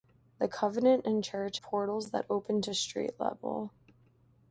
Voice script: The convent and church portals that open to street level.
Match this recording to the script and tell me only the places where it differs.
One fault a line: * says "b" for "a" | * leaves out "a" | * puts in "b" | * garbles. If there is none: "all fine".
all fine